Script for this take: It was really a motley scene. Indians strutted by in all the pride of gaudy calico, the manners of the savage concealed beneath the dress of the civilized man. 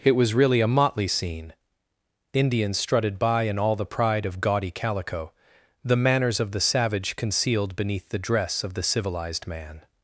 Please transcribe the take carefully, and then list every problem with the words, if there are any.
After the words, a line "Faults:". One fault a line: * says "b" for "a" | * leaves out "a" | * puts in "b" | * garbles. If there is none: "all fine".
It was really a motley scene. Indians strutted by in all the pride of gaudy calico, the manners of the savage concealed beneath the dress of the civilized man.
Faults:
all fine